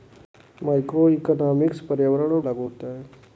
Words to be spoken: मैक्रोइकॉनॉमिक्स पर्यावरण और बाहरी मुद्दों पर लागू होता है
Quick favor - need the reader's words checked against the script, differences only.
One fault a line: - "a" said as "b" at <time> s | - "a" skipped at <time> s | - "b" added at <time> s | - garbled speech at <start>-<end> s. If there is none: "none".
- "बाहरी मुद्दों पर" skipped at 2.5 s